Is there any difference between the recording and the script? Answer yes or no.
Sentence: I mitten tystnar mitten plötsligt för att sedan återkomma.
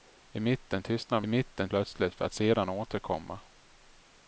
no